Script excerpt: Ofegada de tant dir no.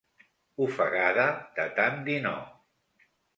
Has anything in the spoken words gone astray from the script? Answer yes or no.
no